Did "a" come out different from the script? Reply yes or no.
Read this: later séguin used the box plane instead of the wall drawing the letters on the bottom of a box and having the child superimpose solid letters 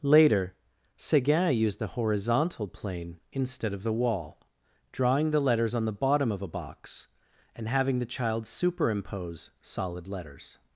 no